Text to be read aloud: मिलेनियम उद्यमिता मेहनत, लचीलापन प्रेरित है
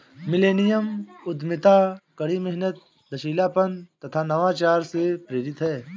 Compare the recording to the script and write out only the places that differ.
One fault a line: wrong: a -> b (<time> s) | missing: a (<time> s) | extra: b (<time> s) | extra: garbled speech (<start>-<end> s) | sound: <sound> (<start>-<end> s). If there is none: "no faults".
extra: कड़ी (2.2 s)
extra: तथा नवाचार से (4.0 s)